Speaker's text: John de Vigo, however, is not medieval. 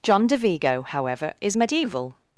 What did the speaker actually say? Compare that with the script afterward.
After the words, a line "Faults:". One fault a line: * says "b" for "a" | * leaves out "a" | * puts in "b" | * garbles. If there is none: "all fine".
John de Vigo, however, is medieval.
Faults:
* leaves out "not"